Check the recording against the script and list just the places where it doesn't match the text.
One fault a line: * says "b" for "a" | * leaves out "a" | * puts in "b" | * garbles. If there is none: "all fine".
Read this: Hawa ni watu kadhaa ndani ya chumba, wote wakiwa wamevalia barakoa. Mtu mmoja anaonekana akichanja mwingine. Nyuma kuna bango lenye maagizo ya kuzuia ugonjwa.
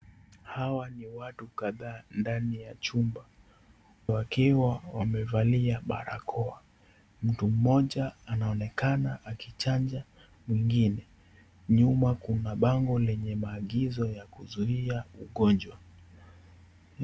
* leaves out "wote"